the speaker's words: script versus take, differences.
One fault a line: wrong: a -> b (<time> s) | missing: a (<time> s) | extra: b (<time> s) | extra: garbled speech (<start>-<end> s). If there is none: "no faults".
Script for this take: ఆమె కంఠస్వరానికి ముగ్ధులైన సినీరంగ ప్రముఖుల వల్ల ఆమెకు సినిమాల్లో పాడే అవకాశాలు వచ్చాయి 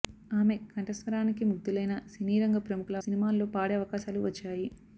missing: వల్ల ఆమెకు (3.0 s)